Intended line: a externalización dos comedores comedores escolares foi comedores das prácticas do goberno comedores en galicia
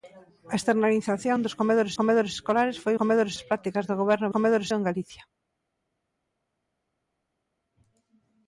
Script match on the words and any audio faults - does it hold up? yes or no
yes